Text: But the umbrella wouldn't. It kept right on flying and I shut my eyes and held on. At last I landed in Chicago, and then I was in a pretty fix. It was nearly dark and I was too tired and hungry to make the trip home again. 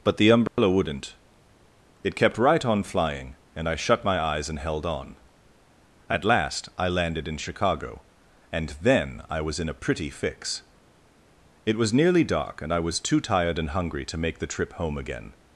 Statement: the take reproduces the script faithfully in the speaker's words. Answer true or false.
true